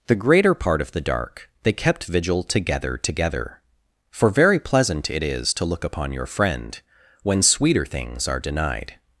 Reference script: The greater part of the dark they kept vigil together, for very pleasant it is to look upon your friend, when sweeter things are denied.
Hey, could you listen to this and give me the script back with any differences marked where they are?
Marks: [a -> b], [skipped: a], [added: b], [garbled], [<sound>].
The greater part of the dark they kept vigil together, [added: together] for very pleasant it is to look upon your friend, when sweeter things are denied.